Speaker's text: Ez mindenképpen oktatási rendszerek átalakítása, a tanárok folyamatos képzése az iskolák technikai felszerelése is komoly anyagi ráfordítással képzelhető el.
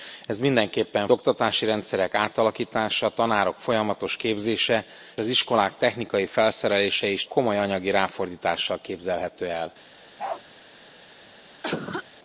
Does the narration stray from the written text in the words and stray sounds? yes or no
yes